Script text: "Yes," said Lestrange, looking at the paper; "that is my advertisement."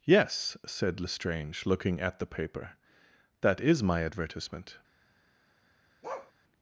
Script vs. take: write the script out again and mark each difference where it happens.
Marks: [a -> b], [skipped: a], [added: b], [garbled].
"Yes," said Lestrange, looking at the paper; "that is my advertisement."